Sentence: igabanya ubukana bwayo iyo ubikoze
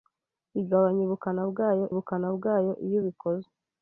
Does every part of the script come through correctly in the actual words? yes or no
no